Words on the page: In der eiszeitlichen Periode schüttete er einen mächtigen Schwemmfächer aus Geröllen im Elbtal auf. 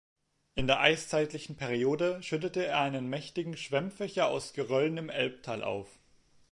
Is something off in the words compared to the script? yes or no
no